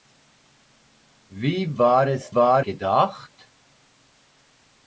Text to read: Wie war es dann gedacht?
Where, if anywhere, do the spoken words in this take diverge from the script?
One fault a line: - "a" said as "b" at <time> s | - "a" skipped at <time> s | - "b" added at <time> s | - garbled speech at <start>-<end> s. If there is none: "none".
- "dann" said as "war" at 2.3 s